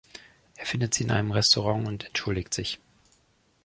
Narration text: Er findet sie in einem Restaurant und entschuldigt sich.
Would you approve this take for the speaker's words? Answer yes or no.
yes